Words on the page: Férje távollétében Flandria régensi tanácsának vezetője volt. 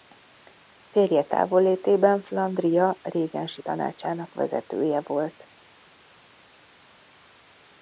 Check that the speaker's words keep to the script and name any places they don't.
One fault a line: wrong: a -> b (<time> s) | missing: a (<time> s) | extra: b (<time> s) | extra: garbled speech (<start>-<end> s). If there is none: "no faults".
no faults